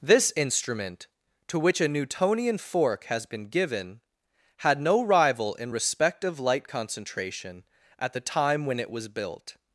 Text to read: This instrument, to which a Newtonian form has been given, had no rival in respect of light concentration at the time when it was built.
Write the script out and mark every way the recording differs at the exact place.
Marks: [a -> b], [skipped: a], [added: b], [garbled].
This instrument, to which a Newtonian [form -> fork] has been given, had no rival in respect of light concentration at the time when it was built.